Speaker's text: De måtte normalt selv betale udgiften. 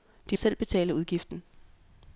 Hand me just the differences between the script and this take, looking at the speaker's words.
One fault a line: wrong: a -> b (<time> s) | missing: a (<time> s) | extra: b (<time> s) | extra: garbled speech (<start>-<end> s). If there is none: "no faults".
missing: måtte normalt (0.4 s)